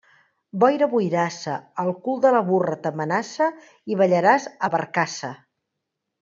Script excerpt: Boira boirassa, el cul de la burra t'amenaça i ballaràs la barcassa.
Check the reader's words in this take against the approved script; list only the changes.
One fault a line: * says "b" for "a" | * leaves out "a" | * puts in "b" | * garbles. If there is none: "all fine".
all fine